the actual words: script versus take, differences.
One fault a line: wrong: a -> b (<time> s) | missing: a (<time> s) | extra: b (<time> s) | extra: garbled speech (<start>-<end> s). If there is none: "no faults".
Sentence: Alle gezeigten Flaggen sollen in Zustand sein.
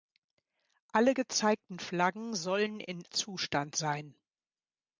no faults